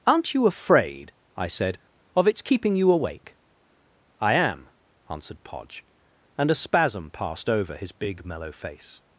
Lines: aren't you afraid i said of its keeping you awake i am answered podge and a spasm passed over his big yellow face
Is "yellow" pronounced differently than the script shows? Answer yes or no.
yes